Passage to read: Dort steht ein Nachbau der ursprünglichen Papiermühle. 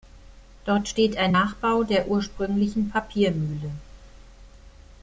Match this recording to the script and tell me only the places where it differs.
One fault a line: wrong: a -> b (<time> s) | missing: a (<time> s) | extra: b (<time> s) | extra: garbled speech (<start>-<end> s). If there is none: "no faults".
no faults